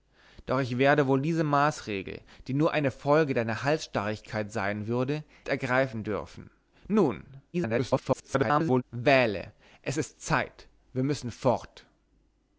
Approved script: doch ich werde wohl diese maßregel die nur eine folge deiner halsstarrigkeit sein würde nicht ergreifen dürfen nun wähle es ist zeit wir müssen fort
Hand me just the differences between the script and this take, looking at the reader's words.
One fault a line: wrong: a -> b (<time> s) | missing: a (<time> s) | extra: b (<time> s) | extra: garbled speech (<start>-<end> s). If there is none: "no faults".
missing: nicht (5.2 s)
extra: garbled speech (7.5-8.8 s)